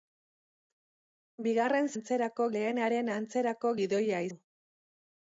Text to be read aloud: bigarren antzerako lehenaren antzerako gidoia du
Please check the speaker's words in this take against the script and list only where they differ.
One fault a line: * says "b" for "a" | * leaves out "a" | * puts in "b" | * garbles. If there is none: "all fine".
all fine